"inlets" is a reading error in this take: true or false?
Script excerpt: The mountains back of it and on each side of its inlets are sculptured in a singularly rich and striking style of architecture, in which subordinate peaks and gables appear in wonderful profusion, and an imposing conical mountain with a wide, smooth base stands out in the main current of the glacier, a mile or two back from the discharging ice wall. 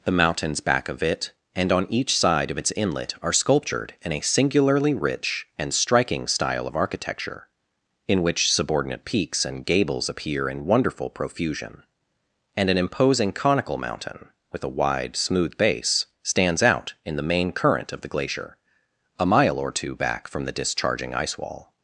true